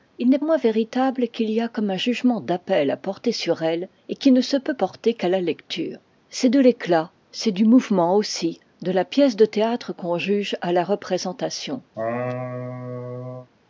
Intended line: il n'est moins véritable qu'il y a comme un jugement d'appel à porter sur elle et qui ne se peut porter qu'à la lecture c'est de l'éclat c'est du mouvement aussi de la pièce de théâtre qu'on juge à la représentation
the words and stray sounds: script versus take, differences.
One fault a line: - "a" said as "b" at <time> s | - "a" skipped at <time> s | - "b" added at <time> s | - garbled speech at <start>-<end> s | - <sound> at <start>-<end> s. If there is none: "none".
- laugh at 11.9-13.5 s